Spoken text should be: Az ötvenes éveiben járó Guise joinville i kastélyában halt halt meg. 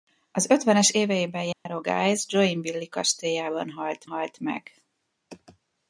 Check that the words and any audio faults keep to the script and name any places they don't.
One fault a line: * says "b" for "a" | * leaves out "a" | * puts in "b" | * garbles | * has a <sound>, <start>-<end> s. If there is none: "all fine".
* has a dropout, 1.5-1.7 s